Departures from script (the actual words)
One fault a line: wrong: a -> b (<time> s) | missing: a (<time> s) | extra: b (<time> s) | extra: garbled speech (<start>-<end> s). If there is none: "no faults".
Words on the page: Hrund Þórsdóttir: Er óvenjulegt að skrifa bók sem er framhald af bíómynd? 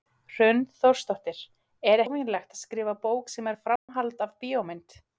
no faults